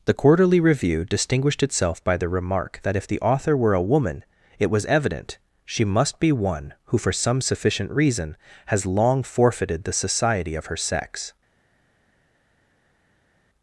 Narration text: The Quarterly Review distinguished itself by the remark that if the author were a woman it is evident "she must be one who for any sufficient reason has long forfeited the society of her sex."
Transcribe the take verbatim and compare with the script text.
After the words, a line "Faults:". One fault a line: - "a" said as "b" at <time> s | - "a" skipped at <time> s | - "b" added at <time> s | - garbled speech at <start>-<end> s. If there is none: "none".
The Quarterly Review distinguished itself by the remark that if the author were a woman it was evident "she must be one who for some sufficient reason has long forfeited the society of her sex."
Faults:
- "is" said as "was" at 4.7 s
- "any" said as "some" at 7.1 s